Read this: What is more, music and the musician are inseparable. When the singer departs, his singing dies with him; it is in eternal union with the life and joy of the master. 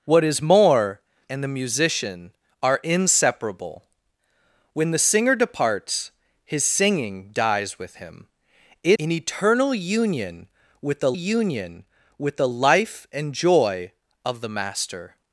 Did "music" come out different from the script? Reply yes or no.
yes